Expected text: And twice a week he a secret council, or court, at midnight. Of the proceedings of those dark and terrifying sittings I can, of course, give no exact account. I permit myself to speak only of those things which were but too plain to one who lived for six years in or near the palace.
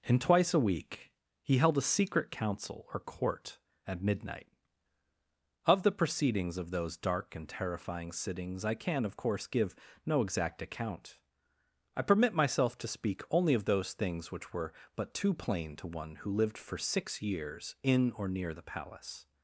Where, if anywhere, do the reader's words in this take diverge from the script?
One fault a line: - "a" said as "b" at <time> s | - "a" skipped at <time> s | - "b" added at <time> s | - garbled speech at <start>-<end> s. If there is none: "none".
- "held" added at 1.6 s